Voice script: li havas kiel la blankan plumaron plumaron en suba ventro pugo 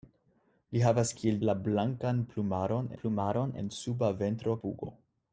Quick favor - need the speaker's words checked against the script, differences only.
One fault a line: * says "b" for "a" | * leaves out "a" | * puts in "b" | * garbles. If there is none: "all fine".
all fine